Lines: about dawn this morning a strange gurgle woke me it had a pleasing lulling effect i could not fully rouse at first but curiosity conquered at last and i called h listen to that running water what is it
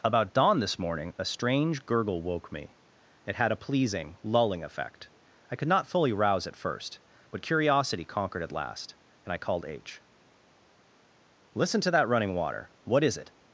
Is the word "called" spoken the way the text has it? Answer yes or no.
yes